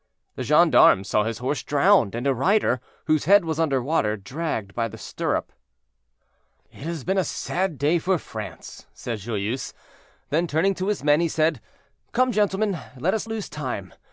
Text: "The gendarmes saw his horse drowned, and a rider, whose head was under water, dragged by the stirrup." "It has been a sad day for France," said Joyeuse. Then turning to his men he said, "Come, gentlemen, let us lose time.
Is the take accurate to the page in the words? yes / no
yes